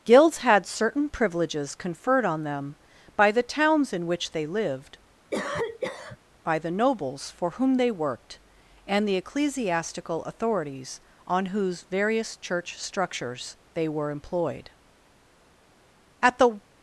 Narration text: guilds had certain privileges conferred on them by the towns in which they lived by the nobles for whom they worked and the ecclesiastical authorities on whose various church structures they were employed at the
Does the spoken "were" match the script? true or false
true